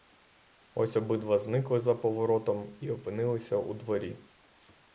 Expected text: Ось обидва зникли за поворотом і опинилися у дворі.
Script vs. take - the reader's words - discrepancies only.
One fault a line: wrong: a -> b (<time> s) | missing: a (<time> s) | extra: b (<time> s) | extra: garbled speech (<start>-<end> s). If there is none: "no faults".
no faults